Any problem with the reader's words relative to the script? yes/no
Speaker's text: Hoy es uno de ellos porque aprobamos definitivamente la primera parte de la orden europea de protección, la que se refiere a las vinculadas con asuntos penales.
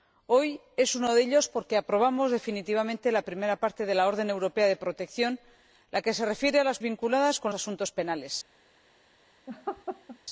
no